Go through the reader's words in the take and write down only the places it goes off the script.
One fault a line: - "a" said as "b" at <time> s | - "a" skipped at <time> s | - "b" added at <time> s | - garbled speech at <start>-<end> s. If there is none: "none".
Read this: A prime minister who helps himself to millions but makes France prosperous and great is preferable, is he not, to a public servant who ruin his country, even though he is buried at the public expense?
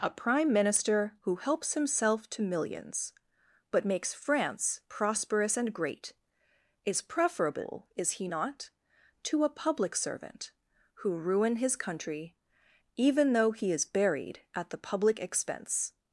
none